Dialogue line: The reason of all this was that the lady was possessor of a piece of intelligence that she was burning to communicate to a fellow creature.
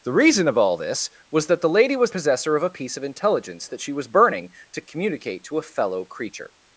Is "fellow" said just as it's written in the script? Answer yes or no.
yes